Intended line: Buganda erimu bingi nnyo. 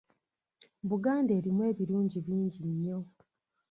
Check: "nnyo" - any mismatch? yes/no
no